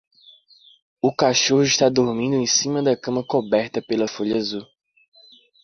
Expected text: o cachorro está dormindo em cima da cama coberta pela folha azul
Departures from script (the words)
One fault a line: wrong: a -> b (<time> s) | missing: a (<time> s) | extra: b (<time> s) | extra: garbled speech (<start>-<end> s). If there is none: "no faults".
no faults